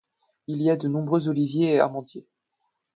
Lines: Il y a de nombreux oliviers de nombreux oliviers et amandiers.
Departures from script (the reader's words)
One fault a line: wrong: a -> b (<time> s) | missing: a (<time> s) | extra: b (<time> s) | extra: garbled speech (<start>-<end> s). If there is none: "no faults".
missing: de nombreux oliviers (1.7 s)